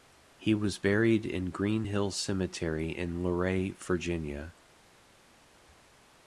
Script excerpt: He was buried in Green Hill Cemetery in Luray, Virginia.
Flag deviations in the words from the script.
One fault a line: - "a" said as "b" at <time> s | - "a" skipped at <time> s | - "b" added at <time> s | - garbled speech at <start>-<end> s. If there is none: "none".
none